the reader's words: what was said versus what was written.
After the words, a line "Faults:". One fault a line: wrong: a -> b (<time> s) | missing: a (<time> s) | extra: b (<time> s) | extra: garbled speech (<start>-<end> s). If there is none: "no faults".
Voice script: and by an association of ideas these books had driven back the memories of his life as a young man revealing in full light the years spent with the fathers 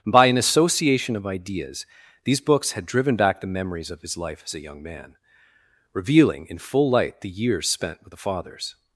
by an association of ideas these books had driven back the memories of his life as a young man revealing in full light the years spent with the fathers
Faults:
missing: and (0.1 s)